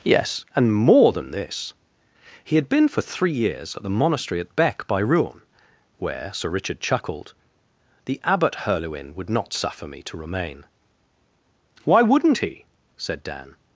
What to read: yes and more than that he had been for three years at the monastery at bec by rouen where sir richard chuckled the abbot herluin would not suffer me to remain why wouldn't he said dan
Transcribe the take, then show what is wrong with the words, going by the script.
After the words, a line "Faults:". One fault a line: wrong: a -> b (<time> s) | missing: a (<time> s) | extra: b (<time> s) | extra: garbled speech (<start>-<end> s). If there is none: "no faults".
yes and more than this he had been for three years at the monastery at bec by rouen where sir richard chuckled the abbot herluin would not suffer me to remain why wouldn't he said dan
Faults:
wrong: that -> this (1.3 s)